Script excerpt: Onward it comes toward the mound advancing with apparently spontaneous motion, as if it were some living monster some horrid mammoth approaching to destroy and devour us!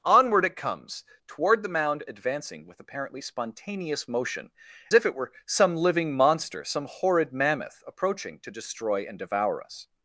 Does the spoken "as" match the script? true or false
false